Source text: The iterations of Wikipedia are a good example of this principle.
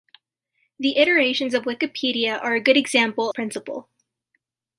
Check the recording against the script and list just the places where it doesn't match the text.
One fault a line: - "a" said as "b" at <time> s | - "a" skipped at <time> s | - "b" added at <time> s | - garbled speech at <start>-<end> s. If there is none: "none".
- "of this" skipped at 3.3 s